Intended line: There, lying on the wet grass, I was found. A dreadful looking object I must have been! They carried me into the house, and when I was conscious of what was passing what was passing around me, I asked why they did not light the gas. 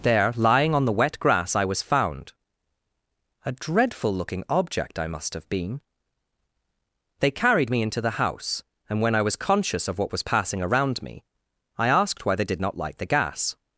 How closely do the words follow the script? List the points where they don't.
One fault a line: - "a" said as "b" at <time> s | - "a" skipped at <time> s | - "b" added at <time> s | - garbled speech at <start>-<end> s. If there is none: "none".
- "what was passing" skipped at 10.6 s